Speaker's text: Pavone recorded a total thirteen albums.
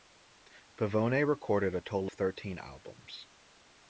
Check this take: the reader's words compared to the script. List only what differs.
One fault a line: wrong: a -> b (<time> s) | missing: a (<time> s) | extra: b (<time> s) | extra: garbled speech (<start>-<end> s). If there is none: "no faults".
no faults